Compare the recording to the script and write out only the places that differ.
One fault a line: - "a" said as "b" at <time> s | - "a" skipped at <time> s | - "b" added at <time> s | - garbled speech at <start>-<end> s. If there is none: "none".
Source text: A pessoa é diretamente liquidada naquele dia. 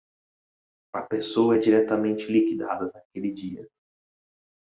none